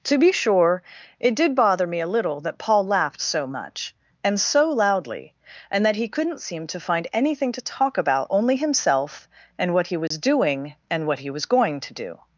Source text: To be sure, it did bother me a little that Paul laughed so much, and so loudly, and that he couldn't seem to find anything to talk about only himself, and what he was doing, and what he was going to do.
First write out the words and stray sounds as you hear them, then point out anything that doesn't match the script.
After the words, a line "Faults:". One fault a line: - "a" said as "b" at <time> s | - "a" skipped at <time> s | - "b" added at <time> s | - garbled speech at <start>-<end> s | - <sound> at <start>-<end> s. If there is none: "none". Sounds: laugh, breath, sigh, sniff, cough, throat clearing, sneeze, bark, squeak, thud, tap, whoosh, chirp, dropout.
To be sure, it did bother me a little that Paul laughed so much, and so loudly, and that he couldn't seem to find anything to talk about only himself, and what he was doing, and what he was going to do.
Faults:
- dropout at 10.1-10.1 s